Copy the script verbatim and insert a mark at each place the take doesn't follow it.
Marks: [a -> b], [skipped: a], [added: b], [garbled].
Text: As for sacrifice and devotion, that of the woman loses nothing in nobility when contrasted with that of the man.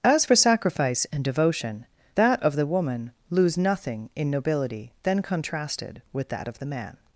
As for sacrifice and devotion, that of the woman [loses -> lose] nothing in nobility [when -> then] contrasted with that of the man.